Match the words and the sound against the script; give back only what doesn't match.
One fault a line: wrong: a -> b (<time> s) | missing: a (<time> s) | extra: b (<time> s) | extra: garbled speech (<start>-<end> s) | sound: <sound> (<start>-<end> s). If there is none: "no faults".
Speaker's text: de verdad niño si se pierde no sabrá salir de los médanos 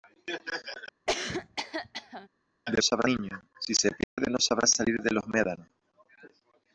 sound: cough (1.1-2.3 s)
wrong: verdad -> sabrá (2.8 s)
sound: dropout (4.0-4.2 s)